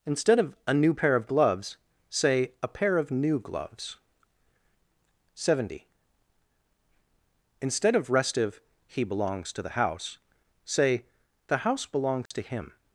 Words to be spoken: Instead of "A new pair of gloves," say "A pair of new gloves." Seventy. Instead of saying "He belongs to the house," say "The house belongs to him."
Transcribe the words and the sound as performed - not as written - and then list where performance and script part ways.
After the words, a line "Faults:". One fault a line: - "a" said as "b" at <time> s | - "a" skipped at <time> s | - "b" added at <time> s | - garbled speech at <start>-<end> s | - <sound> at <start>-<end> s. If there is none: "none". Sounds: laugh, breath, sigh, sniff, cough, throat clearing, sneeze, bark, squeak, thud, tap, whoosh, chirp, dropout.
Instead of "A new pair of gloves," say "A pair of new gloves." Seventy. Instead of restive "He belongs to the house," say "The house belongs to him."
Faults:
- "saying" said as "restive" at 8.1 s
- dropout at 12.3-12.3 s